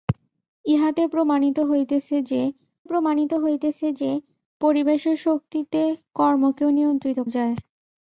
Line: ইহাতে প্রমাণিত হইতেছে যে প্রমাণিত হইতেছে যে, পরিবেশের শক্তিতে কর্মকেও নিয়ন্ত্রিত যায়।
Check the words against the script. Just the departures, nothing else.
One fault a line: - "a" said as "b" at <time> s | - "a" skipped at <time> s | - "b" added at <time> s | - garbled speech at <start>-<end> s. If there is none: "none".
none